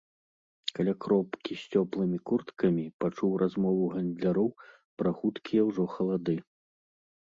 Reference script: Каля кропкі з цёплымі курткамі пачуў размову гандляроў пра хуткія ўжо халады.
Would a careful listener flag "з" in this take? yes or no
no